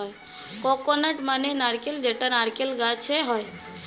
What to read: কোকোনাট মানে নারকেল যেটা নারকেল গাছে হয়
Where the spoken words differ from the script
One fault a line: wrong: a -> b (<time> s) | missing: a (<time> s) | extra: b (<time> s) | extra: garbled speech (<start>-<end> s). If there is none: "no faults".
no faults